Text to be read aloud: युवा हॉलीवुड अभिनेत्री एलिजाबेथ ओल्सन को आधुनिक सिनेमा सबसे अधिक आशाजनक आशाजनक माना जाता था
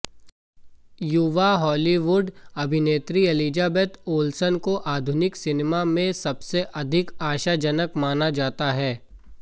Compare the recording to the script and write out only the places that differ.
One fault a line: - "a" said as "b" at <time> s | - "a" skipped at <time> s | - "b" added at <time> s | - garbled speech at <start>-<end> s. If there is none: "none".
- "में" added at 5.9 s
- "आशाजनक" skipped at 8.0 s
- "था" said as "है" at 8.7 s